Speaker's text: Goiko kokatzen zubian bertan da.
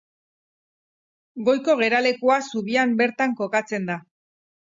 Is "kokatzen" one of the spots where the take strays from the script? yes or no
yes